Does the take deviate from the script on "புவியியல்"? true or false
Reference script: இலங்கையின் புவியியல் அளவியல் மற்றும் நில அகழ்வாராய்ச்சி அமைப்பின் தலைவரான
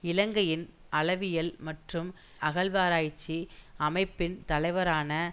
true